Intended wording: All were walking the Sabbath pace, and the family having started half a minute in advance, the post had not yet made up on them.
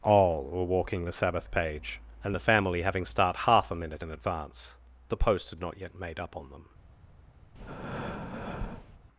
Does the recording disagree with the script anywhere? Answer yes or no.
yes